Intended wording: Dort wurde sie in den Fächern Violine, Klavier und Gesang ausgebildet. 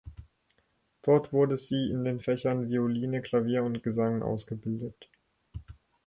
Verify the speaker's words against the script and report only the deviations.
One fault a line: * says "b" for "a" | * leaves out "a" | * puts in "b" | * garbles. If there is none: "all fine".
all fine